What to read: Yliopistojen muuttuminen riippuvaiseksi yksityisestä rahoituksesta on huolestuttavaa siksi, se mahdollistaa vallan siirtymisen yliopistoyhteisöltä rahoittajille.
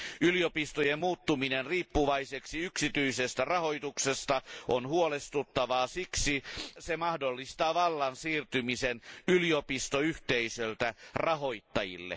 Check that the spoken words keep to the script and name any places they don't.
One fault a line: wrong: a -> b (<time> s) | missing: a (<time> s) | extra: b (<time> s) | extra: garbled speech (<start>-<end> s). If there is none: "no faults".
no faults